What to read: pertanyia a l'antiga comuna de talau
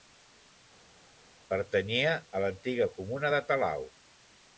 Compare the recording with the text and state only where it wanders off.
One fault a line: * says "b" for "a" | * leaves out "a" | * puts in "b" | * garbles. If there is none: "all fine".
all fine